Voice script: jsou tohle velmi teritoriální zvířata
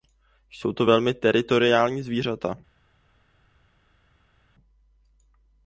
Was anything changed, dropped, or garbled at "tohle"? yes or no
yes